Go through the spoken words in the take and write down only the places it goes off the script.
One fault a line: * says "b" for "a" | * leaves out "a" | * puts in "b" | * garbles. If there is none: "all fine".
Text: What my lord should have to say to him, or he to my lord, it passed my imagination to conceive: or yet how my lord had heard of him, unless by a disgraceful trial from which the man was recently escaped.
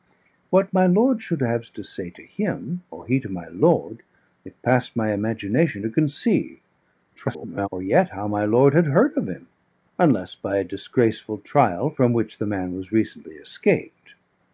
* garbles